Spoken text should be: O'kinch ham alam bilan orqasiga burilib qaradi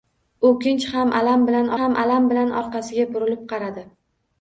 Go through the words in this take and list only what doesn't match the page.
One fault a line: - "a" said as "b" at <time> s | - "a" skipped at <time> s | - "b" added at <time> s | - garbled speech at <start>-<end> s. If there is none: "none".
- "ham alam bilan" added at 1.8 s